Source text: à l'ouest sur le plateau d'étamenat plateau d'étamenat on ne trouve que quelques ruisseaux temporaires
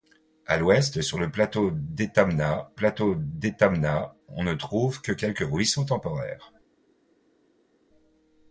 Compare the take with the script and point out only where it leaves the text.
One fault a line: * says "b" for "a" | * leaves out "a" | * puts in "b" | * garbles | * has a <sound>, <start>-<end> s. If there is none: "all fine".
all fine